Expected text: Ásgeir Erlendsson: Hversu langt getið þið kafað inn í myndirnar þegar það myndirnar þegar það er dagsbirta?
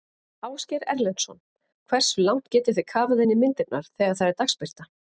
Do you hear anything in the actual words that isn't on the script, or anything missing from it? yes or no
yes